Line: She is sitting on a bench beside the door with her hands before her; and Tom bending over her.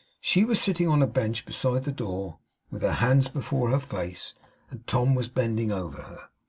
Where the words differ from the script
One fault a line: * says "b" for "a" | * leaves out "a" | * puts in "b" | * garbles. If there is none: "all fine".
* says "was" for "is"
* puts in "face"
* puts in "was"